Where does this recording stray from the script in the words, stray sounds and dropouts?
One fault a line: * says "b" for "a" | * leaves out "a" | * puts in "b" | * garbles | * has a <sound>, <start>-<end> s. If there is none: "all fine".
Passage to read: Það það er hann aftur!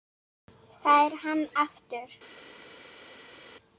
* leaves out "það"